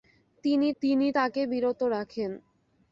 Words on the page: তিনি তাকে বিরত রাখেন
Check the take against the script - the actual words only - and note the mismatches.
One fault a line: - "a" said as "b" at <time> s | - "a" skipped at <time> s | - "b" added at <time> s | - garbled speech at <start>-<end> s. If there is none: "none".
- "তিনি" added at 0.8 s